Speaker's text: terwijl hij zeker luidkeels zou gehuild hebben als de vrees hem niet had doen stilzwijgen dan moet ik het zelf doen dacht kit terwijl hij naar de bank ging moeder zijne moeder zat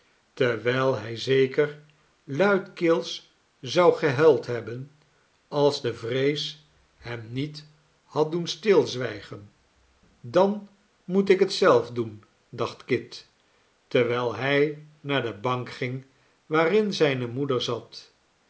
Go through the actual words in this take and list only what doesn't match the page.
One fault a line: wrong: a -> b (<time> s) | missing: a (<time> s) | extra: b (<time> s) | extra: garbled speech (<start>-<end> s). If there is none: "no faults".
wrong: moeder -> waarin (16.4 s)